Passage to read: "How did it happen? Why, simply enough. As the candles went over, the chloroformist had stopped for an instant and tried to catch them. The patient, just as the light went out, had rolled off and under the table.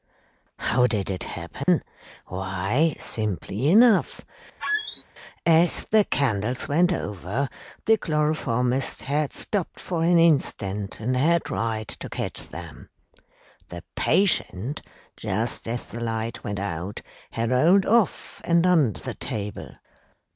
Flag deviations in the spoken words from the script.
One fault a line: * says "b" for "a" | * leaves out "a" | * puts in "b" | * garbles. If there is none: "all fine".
* puts in "had"